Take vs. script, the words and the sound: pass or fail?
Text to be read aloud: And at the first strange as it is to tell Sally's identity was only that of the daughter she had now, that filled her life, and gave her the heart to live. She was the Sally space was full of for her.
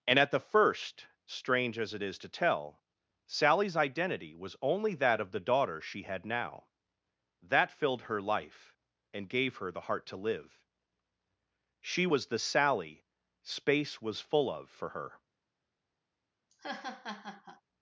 fail